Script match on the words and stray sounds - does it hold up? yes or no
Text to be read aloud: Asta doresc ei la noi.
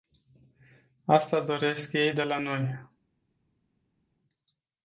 no